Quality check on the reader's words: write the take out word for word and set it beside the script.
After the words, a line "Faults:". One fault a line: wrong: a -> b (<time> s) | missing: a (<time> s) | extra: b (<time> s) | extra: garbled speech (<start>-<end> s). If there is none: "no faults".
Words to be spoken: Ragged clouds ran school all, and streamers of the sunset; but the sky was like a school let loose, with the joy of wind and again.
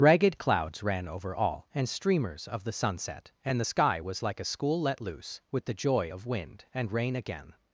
Ragged clouds ran over all, and streamers of the sunset; and the sky was like a school let loose, with the joy of wind and rain again.
Faults:
wrong: school -> over (1.1 s)
wrong: but -> and (3.5 s)
extra: rain (6.9 s)